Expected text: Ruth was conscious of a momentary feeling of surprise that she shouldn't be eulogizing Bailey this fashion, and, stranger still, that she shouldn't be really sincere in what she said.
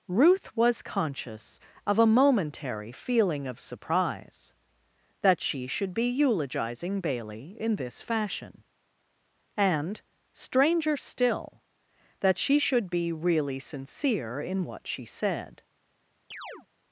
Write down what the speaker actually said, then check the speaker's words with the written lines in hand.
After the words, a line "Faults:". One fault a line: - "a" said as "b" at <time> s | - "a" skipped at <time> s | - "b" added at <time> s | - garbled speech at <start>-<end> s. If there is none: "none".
Ruth was conscious of a momentary feeling of surprise that she should be eulogizing Bailey in this fashion, and, stranger still, that she should be really sincere in what she said.
Faults:
- "shouldn't" said as "should" at 5.7 s
- "in" added at 7.6 s
- "shouldn't" said as "should" at 12.6 s